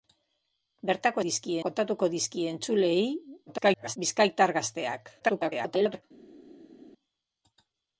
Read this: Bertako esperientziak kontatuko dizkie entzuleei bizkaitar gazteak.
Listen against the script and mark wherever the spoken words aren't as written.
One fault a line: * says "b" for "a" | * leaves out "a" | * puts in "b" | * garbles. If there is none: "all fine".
* says "dizkie" for "esperientziak"
* garbles
* garbles